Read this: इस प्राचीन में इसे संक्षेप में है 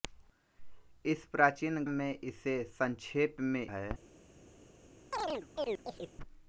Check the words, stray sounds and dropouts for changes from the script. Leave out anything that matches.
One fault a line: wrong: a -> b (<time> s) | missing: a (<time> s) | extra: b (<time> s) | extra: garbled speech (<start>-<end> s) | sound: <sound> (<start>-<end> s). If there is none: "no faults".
sound: chirp (5.1-6.1 s)